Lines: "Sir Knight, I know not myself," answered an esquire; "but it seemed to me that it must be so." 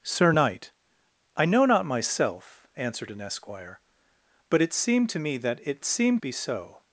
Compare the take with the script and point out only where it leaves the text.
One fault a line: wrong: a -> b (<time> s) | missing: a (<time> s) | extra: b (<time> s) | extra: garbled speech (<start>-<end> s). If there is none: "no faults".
wrong: must -> seemed (5.8 s)